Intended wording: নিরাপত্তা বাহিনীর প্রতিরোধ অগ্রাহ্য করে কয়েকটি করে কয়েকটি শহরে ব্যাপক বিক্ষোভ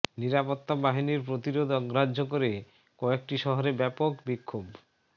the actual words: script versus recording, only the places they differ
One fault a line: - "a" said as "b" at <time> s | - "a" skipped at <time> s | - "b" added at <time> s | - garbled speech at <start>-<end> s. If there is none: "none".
- "করে কয়েকটি" skipped at 3.4 s